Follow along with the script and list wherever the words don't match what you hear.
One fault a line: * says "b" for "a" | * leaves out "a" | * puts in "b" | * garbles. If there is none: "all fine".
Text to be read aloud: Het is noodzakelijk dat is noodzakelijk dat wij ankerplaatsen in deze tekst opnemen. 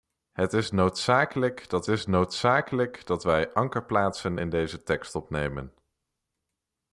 all fine